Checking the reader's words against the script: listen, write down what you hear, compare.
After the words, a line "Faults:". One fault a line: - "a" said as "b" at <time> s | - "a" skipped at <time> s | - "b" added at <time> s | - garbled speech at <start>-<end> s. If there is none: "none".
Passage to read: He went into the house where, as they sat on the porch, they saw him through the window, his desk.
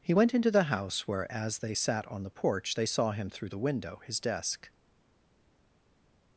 He went into the house where, as they sat on the porch, they saw him through the window, his desk.
Faults:
none